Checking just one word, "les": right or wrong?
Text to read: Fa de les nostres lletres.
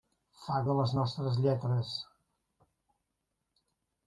right